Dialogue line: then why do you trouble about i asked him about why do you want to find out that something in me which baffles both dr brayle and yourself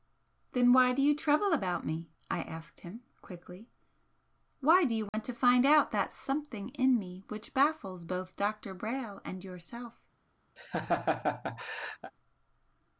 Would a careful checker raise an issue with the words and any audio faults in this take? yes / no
yes